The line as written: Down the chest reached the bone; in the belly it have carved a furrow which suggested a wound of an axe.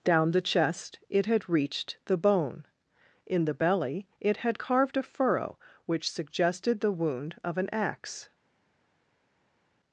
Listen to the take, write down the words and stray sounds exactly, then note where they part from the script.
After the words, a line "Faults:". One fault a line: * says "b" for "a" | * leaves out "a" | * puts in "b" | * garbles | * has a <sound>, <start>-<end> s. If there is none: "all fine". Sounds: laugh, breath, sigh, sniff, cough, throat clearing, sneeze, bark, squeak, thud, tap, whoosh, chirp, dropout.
Down the chest it had reached the bone; in the belly it had carved a furrow which suggested the wound of an axe.
Faults:
* puts in "it had"
* says "had" for "have"
* says "the" for "a"